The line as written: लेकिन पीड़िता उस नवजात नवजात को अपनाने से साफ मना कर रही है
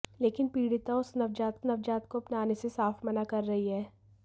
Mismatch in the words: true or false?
false